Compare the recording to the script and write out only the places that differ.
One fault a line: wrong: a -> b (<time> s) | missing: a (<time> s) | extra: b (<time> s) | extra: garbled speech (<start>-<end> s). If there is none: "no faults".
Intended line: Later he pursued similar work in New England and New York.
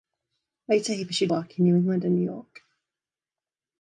missing: similar (1.3 s)